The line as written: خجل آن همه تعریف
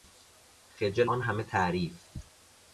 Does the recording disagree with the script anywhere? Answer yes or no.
no